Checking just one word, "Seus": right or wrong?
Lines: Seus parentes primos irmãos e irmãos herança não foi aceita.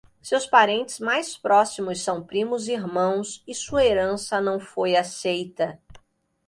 right